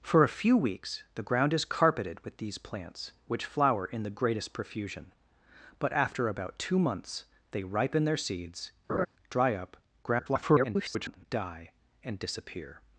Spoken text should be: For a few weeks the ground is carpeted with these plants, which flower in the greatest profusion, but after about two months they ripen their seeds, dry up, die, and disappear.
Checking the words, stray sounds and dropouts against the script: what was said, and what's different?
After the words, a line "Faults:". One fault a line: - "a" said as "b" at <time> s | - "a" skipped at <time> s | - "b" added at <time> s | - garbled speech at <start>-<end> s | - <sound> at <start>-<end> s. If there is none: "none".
For a few weeks the ground is carpeted with these plants, which flower in the greatest profusion, but after about two months they ripen their seeds, dry up, [garbled] die, and disappear.
Faults:
- laugh at 8.9-9.1 s
- garbled speech at 10.0-11.3 s